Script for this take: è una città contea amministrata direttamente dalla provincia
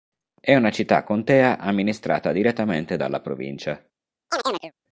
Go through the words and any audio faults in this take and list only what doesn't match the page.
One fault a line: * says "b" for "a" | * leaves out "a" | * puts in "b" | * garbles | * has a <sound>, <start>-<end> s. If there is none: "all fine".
* has a chirp, 4.3-4.7 s